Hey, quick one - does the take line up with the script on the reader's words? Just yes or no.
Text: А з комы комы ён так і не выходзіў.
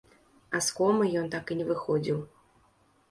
no